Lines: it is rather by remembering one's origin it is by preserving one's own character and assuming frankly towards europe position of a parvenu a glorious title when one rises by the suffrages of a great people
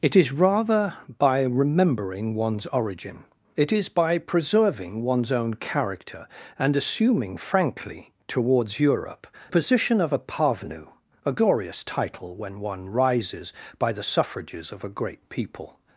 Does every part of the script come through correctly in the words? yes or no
yes